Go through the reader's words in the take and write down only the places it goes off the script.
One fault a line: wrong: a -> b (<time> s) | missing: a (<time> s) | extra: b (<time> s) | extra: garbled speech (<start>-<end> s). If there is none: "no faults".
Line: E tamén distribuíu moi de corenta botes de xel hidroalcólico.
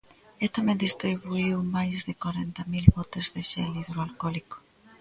wrong: moi -> máis (1.8 s)
extra: mil (2.7 s)